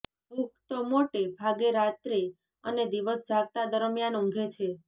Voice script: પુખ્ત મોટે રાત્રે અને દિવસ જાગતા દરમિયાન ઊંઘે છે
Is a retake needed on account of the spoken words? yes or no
yes